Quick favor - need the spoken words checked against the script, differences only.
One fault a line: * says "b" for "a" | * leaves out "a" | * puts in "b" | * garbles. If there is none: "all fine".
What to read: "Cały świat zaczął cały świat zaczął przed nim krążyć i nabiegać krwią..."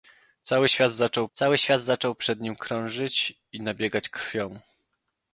all fine